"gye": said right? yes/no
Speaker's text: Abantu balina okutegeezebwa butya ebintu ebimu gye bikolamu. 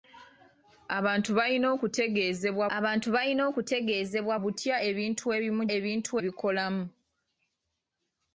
no